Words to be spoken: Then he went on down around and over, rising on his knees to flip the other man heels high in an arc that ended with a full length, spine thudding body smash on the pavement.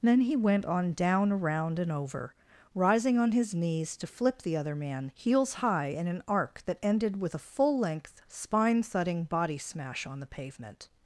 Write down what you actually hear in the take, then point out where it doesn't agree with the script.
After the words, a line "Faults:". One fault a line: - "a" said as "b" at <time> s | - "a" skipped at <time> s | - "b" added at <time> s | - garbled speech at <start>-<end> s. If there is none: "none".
Then he went on down around and over, rising on his knees to flip the other man heels high in an arc that ended with a full length, spine thudding body smash on the pavement.
Faults:
none